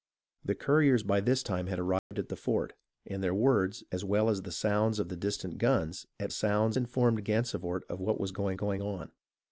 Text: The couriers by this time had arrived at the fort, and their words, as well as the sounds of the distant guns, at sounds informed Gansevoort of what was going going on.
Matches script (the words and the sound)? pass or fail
fail